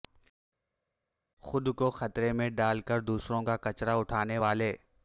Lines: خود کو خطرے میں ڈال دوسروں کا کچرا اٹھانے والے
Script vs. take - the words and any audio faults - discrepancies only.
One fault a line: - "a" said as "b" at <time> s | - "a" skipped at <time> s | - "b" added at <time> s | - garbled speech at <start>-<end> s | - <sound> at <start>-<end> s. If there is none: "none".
- "کر" added at 2.8 s